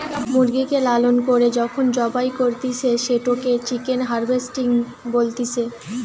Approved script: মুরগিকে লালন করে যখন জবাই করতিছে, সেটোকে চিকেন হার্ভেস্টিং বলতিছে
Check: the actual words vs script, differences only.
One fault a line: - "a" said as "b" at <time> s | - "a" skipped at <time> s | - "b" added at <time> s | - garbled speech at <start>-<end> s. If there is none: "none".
none